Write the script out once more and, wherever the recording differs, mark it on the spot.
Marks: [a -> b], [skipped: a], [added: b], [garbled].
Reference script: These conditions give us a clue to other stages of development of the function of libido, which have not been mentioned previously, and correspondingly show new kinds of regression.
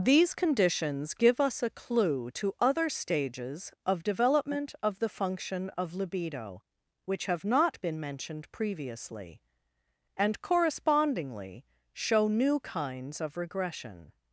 These conditions give us a clue to other stages of development of the function of libido, which have not been mentioned previously, and correspondingly show new kinds of regression.